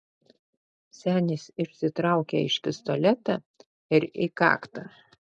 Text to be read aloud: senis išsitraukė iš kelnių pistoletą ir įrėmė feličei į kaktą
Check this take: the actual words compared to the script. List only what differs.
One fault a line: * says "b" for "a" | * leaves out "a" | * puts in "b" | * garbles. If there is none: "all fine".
* leaves out "kelnių"
* leaves out "įrėmė feličei"